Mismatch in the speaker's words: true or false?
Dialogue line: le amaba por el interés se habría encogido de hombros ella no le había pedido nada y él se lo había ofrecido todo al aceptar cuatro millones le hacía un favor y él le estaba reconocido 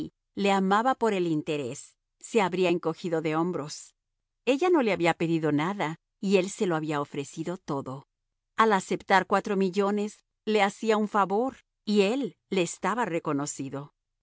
false